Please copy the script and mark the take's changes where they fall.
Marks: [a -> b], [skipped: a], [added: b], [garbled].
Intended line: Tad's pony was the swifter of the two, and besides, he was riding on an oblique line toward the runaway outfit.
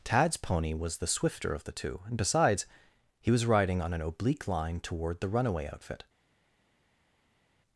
Tad's pony was the swifter of the two, and besides, he was riding on an oblique line toward the runaway outfit.